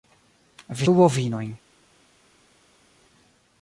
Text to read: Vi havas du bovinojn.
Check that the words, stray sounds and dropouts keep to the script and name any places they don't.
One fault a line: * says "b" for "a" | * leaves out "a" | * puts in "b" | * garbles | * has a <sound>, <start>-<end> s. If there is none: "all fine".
* leaves out "havas"